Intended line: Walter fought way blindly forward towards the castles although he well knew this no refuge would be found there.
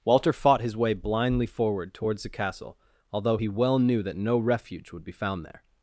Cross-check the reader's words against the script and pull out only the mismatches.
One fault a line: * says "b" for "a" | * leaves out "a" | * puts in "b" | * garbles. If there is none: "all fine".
* puts in "his"
* says "castle" for "castles"
* says "that" for "this"